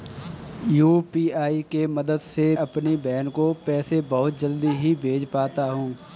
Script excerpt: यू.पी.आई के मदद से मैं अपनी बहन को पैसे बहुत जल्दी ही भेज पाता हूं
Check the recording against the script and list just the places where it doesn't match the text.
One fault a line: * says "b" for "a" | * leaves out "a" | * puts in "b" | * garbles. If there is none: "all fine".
* leaves out "मैं"